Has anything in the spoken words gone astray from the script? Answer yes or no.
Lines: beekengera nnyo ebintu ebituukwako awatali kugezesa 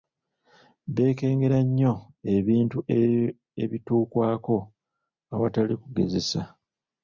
no